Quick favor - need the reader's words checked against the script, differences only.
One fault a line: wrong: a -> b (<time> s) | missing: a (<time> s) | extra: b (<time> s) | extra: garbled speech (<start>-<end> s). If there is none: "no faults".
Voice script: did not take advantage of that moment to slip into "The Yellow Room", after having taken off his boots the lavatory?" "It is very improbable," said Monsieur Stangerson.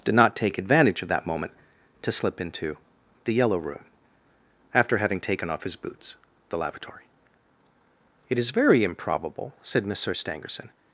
no faults